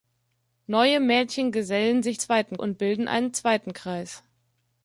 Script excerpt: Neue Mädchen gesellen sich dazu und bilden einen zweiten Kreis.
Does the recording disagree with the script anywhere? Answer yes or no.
yes